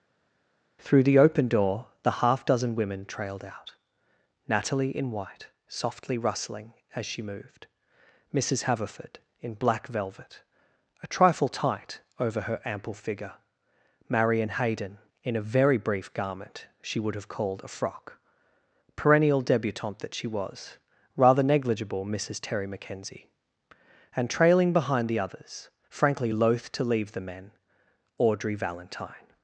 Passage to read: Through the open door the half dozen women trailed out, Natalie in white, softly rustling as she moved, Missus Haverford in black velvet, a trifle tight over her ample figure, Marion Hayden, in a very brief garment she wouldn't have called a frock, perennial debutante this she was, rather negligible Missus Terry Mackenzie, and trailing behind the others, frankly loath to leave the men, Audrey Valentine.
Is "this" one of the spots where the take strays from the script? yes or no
yes